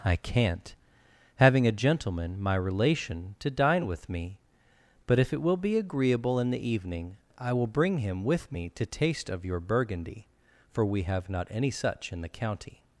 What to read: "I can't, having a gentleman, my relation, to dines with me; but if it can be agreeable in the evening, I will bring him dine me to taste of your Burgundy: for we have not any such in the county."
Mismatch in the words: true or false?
true